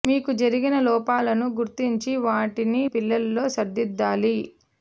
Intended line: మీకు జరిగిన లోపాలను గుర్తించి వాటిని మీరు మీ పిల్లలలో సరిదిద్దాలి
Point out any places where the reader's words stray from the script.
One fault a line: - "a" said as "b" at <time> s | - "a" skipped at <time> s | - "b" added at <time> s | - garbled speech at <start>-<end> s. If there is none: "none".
- "మీరు మీ" skipped at 2.8 s